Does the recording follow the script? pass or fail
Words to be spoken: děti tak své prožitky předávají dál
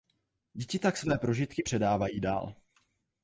pass